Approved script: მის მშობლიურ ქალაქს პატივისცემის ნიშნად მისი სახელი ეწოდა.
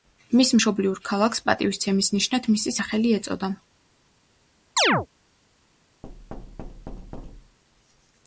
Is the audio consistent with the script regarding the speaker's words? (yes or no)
yes